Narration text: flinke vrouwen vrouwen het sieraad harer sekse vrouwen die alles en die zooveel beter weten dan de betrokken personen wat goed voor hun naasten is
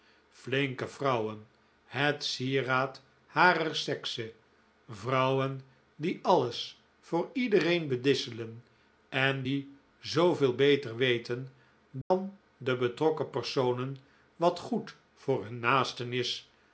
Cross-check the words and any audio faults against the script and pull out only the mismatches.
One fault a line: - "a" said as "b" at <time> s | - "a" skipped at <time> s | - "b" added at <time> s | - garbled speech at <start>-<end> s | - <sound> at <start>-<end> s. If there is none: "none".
- "vrouwen" skipped at 1.5 s
- "voor iedereen bedisselen" added at 7.0 s
- dropout at 12.0-12.1 s